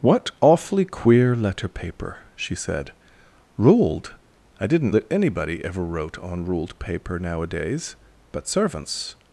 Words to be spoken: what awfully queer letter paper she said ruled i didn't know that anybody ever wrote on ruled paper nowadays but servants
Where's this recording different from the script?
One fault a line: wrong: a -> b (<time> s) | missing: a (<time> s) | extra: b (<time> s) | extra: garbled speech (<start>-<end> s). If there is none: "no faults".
missing: know (4.9 s)